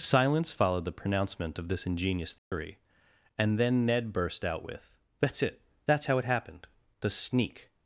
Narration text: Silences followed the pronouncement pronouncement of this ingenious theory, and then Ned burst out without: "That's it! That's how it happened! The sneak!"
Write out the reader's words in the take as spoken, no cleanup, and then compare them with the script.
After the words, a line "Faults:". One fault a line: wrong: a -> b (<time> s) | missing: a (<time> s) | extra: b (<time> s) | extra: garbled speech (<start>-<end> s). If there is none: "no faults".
Silence followed the pronouncement of this ingenious theory, and then Ned burst out with: "That's it! That's how it happened! The sneak!"
Faults:
wrong: Silences -> Silence (0.0 s)
missing: pronouncement (1.6 s)
wrong: without -> with (4.6 s)